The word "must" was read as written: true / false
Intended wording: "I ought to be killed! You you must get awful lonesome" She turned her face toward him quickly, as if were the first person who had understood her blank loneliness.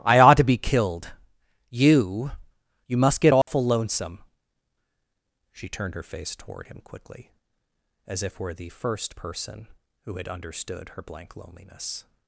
true